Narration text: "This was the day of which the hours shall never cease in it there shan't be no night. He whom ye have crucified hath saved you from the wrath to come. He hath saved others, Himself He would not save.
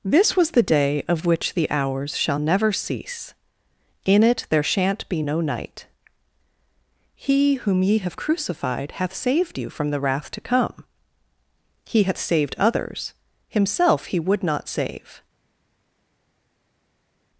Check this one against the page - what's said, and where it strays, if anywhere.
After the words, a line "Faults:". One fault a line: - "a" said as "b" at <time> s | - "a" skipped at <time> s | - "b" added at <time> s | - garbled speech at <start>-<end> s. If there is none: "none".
"This was the day of which the hours shall never cease in it there shan't be no night. He whom ye have crucified hath saved you from the wrath to come. He hath saved others, Himself He would not save.
Faults:
none